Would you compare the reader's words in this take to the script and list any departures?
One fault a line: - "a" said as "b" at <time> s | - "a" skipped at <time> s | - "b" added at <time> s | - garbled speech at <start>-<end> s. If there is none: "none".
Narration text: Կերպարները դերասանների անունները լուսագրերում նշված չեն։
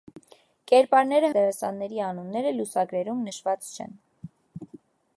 none